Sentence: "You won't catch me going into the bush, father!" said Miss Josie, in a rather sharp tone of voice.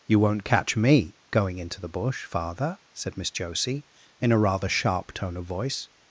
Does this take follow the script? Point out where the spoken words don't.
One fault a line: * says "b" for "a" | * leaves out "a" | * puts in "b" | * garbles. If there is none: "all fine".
all fine